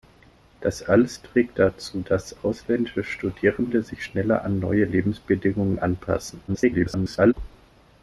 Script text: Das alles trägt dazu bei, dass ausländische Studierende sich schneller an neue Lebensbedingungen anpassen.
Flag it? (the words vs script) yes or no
yes